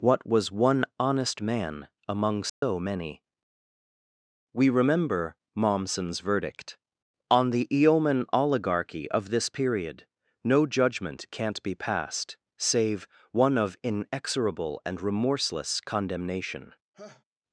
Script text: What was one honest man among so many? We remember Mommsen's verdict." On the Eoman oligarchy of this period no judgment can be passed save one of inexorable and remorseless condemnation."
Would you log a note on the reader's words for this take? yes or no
yes